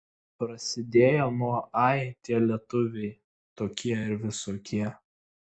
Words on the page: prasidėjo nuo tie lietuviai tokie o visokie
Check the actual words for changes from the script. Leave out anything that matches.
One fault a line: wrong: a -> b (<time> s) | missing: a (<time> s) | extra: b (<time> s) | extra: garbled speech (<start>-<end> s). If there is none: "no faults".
extra: ai (1.8 s)
wrong: o -> ir (4.0 s)